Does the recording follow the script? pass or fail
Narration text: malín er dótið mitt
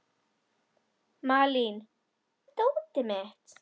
pass